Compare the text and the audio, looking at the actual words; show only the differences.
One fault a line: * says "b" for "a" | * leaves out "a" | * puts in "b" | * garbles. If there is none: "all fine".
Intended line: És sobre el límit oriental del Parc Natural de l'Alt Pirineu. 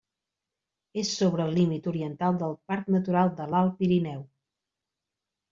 all fine